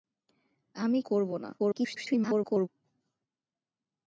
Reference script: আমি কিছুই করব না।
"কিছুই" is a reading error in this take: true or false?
true